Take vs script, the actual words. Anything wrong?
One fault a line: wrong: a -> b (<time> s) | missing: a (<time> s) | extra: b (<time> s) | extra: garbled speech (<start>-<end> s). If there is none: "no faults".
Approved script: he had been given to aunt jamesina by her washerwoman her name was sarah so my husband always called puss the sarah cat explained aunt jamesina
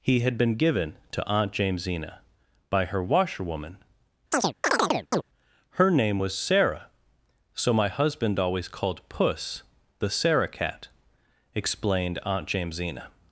no faults